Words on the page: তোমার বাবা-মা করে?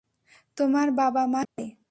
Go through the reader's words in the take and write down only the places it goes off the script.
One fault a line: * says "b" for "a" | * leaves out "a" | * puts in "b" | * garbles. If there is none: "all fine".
all fine